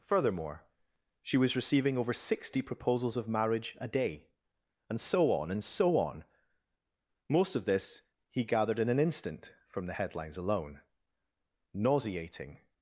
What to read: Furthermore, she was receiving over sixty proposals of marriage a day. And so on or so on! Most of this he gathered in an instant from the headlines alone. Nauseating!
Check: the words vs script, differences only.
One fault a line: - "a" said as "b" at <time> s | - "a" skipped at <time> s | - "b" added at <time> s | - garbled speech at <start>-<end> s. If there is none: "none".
- "or" said as "and" at 5.5 s